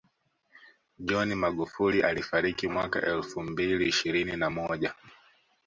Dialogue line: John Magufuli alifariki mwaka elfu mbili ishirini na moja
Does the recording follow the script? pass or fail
pass